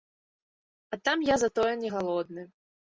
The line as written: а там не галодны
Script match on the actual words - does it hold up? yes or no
no